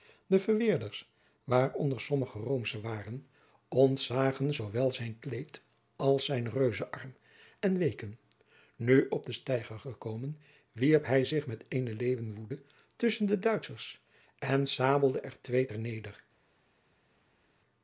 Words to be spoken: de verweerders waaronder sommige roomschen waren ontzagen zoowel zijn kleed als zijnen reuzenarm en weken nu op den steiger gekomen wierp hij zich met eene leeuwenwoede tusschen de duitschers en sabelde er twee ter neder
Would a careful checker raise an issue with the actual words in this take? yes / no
no